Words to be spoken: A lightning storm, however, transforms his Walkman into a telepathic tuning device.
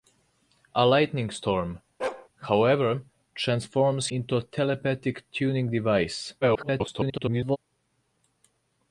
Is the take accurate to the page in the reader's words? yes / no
no